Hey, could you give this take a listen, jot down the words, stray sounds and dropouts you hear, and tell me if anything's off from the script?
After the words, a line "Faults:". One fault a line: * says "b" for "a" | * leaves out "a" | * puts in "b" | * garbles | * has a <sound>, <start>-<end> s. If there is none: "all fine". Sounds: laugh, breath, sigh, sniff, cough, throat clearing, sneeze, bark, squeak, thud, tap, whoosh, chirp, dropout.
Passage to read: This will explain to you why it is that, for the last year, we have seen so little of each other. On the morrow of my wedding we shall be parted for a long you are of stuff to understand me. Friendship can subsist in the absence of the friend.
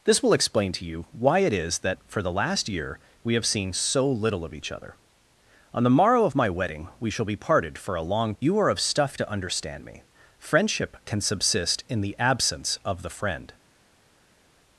This will explain to you why it is that, for the last year, we have seen so little of each other. On the morrow of my wedding we shall be parted for a long you are of stuff to understand me. Friendship can subsist in the absence of the friend.
Faults:
all fine